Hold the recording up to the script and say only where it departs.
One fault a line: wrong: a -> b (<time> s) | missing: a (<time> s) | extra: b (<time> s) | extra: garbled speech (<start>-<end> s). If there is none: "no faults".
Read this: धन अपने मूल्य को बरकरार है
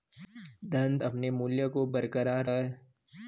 no faults